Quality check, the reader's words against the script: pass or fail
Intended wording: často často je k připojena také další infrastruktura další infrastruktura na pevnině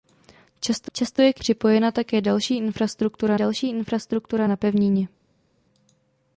pass